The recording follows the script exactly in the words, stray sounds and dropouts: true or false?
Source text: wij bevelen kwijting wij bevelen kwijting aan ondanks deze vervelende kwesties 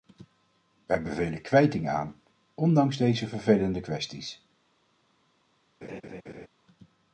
false